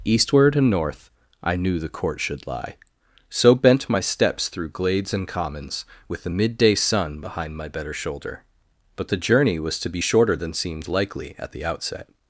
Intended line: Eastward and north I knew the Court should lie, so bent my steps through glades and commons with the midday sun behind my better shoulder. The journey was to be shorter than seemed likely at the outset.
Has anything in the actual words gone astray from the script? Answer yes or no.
yes